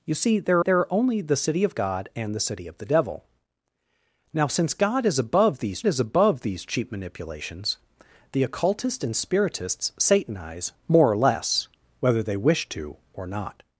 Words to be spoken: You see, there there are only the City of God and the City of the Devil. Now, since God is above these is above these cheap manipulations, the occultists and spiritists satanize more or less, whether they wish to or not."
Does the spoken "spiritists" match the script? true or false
true